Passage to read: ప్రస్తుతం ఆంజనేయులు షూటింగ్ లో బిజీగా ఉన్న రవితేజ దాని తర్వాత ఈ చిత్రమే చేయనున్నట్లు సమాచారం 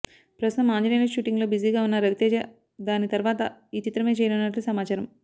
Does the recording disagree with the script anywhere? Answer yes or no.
no